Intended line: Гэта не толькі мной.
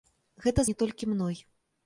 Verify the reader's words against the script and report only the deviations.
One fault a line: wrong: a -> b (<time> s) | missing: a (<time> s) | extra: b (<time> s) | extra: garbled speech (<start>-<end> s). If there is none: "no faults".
no faults